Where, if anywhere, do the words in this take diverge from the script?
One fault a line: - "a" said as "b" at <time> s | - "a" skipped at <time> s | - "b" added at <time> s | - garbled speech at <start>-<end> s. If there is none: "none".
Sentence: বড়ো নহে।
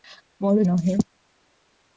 none